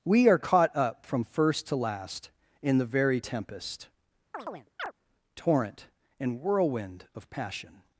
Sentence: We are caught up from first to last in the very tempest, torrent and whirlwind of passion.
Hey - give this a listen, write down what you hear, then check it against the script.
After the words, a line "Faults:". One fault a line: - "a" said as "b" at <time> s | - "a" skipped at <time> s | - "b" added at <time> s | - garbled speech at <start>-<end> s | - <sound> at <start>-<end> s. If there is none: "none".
We are caught up from first to last in the very tempest, torrent and whirlwind of passion.
Faults:
- chirp at 4.3-4.9 s